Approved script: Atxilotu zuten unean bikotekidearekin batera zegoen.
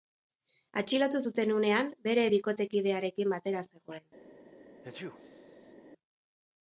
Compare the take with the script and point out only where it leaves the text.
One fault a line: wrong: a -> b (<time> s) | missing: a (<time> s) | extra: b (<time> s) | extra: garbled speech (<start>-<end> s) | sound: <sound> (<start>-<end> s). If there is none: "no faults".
extra: bere (2.1 s)
sound: sneeze (4.8-5.7 s)